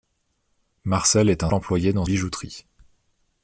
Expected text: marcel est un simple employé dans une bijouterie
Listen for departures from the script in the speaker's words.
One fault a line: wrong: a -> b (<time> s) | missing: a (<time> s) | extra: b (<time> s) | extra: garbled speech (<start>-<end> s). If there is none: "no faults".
missing: simple (1.5 s)
missing: une (2.1 s)